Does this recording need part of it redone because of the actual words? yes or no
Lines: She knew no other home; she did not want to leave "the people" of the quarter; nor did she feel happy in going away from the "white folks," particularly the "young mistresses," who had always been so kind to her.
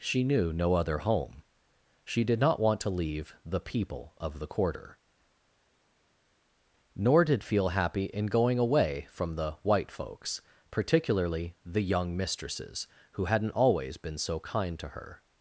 yes